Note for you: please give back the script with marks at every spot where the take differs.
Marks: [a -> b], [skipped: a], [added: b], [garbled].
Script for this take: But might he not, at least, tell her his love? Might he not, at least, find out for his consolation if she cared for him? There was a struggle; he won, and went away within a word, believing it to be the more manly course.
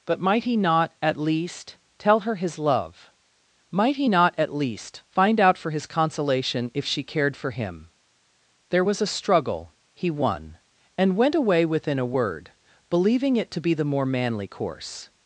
But might he not, at least, tell her his love? Might he not, at least, find out for his consolation if she cared for him? There was a struggle; he won, and went away within a word, believing it to be the more manly course.